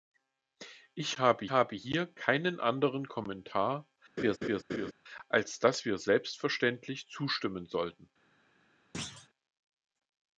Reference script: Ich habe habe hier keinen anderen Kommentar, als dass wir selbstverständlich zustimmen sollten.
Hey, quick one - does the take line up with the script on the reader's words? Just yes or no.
yes